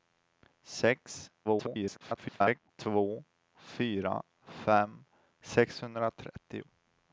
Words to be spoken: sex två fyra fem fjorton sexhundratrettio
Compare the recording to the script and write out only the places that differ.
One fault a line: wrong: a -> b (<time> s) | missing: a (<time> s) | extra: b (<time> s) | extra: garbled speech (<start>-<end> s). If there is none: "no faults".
extra: garbled speech (1.4-2.7 s)
missing: fjorton (5.0 s)